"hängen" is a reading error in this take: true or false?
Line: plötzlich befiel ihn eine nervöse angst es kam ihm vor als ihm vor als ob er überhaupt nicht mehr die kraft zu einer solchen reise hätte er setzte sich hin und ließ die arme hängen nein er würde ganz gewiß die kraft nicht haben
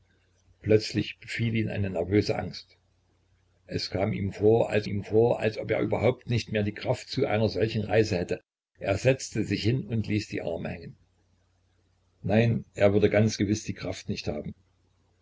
false